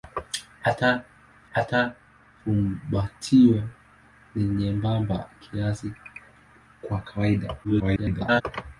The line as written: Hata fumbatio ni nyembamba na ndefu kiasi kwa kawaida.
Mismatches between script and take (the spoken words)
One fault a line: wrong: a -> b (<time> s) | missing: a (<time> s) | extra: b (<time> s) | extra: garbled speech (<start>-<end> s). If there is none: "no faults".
extra: hata (1.5 s)
missing: na ndefu (5.3 s)
extra: garbled speech (7.6-8.4 s)